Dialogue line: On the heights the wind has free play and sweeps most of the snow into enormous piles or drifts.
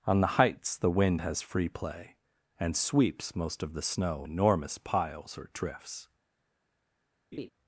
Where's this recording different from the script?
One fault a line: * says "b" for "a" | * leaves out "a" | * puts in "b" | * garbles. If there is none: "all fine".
* leaves out "into"